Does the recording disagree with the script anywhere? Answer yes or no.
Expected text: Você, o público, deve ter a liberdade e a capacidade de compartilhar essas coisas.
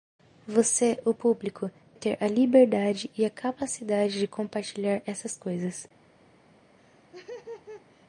yes